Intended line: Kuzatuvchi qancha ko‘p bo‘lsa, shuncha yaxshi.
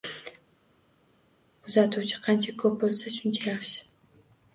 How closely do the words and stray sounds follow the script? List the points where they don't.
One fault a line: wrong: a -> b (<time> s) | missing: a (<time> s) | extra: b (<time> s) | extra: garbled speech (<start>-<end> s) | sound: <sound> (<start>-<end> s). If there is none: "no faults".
no faults